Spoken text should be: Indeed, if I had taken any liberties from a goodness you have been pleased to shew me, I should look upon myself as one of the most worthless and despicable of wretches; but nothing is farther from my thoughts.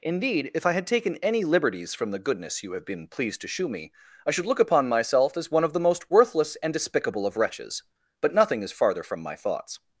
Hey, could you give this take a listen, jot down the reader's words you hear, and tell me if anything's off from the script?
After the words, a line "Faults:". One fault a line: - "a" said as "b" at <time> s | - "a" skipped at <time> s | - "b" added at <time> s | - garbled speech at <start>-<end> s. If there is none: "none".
Indeed, if I had taken any liberties from the goodness you have been pleased to shew me, I should look upon myself as one of the most worthless and despicable of wretches; but nothing is farther from my thoughts.
Faults:
- "a" said as "the" at 2.1 s